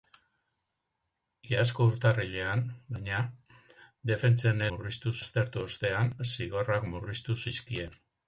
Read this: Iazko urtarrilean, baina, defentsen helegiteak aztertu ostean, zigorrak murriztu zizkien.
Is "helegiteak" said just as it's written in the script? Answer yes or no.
no